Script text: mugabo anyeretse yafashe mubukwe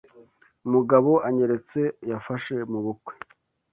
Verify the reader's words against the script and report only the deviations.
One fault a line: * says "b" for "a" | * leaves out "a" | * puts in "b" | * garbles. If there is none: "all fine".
all fine